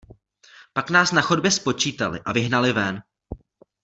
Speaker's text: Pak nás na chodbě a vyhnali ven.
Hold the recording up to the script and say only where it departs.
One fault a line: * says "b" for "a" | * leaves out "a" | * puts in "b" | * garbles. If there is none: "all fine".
* puts in "spočítali"